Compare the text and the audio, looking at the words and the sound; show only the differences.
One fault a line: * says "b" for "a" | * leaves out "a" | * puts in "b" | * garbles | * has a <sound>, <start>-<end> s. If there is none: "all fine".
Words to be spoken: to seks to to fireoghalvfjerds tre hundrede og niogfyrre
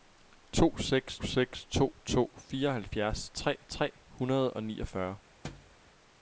* puts in "seks"
* puts in "tre"
* has a thud, 5.4-5.8 s